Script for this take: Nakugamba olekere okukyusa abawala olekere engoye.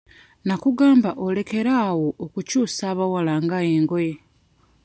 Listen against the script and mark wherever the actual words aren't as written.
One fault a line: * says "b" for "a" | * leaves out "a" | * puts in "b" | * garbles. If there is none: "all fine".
* puts in "awo"
* says "nga" for "olekere"